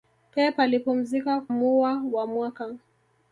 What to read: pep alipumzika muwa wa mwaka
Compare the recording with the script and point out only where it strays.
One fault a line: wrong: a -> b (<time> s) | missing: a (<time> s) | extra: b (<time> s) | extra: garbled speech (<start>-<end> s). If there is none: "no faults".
no faults